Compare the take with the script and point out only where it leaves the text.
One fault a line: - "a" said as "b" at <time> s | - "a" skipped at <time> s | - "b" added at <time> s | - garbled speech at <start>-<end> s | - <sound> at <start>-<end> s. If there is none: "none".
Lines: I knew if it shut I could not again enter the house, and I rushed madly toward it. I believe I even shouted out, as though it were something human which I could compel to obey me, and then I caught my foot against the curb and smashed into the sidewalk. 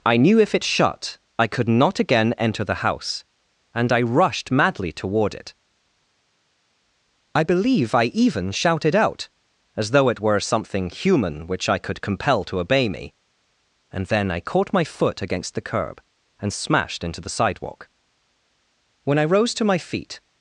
- "When I rose to my feet" added at 19.0 s